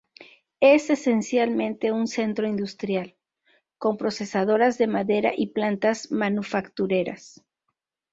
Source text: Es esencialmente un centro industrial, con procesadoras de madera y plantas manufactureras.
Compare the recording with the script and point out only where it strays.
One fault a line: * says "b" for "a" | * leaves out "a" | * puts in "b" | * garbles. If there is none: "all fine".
all fine